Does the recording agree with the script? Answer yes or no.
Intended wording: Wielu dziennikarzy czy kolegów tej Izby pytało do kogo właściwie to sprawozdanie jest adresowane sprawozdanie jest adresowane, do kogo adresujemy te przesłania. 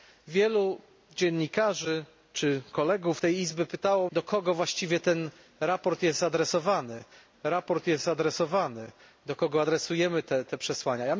yes